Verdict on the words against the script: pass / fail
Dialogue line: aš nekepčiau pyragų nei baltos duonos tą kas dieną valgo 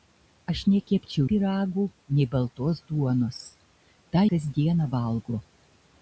pass